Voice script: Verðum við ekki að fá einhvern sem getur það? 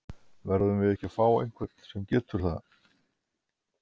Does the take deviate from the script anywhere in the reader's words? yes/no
no